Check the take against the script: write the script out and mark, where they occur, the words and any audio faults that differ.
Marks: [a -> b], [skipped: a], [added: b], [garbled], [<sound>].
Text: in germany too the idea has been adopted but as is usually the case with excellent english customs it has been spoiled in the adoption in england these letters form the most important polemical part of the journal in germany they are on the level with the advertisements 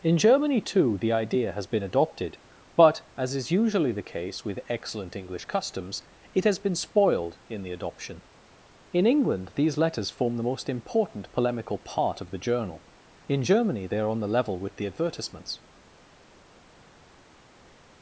in germany too the idea has been adopted but as is usually the case with excellent english customs it has been spoiled in the adoption in england these letters form the most important polemical part of the journal in germany they are on the level with the advertisements